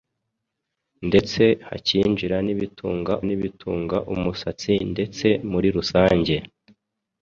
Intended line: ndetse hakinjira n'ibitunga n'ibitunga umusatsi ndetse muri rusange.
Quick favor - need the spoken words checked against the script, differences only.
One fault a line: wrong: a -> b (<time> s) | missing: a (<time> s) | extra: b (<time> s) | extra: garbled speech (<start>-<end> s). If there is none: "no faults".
no faults